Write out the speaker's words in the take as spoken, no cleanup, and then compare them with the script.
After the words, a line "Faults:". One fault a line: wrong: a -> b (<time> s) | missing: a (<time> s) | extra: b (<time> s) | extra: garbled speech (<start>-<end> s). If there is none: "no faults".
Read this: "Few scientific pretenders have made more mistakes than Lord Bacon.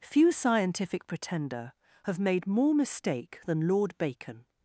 "Few scientific pretender have made more mistake than Lord Bacon.
Faults:
wrong: pretenders -> pretender (1.1 s)
wrong: mistakes -> mistake (2.7 s)